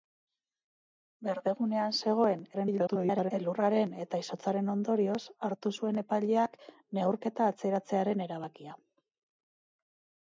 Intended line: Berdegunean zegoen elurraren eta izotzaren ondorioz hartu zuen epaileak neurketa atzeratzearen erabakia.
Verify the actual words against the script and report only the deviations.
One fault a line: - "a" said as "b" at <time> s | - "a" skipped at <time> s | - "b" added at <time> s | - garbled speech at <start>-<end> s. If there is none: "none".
- garbled speech at 2.5-3.3 s